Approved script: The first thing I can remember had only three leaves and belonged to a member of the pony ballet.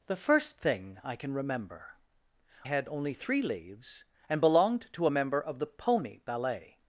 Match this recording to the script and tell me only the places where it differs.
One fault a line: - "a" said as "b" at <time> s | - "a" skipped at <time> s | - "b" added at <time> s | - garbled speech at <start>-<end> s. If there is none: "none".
none